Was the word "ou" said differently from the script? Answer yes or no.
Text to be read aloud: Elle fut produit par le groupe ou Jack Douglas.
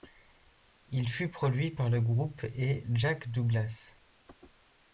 yes